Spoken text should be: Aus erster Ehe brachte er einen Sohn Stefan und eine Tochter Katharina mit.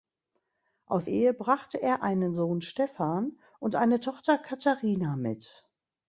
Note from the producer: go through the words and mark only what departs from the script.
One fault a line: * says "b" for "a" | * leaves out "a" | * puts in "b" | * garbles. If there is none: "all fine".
* leaves out "erster"